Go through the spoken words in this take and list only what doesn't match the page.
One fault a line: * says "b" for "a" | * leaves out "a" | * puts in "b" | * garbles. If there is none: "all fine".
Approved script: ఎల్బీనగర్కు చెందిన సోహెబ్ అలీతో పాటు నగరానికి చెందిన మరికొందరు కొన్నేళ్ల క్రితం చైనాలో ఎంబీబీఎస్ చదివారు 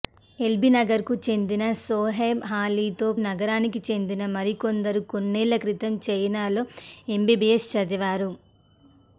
* leaves out "పాటు"